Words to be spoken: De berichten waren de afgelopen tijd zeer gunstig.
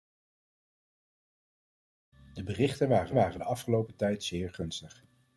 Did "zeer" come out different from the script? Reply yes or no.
no